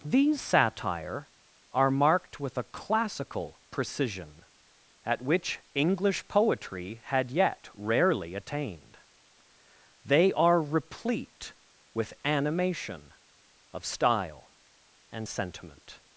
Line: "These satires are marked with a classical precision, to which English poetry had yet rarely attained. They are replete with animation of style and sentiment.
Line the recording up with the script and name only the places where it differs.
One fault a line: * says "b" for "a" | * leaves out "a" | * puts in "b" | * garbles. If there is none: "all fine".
* says "satire" for "satires"
* says "at" for "to"